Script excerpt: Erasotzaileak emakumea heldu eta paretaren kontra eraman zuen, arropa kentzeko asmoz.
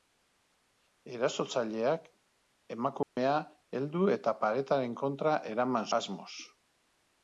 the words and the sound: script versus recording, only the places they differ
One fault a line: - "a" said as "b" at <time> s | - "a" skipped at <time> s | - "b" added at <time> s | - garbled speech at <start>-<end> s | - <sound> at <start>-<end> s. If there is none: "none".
- dropout at 3.0-3.2 s
- "zuen arropa kentzeko" skipped at 5.9 s